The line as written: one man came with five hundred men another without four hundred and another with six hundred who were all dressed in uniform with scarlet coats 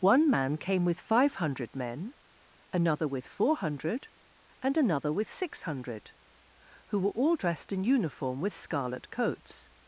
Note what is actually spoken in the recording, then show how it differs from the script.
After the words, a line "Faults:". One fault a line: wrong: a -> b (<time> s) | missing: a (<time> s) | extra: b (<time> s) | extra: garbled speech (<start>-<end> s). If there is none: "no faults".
one man came with five hundred men another with four hundred and another with six hundred who were all dressed in uniform with scarlet coats
Faults:
wrong: without -> with (3.1 s)